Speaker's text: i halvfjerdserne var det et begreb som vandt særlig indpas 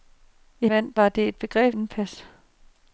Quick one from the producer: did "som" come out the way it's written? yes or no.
no